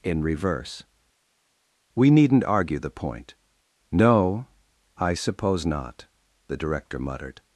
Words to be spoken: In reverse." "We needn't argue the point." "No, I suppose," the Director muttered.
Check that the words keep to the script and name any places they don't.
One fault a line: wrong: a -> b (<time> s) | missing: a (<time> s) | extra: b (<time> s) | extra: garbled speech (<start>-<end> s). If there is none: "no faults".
extra: not (5.7 s)